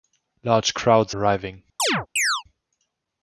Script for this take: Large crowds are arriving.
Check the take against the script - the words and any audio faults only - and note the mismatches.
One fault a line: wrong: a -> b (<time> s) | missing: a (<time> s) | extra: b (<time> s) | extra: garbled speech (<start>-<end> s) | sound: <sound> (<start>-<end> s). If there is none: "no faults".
missing: are (1.1 s)
sound: chirp (1.8-2.4 s)